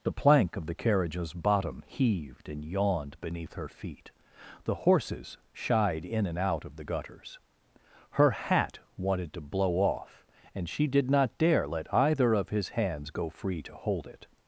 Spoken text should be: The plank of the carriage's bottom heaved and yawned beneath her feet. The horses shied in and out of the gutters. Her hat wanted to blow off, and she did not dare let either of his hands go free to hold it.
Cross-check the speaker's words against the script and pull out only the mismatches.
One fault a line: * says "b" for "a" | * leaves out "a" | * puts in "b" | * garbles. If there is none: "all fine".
all fine